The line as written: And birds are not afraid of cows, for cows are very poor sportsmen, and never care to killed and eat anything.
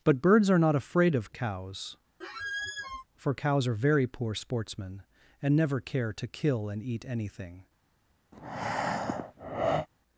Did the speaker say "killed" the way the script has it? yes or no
no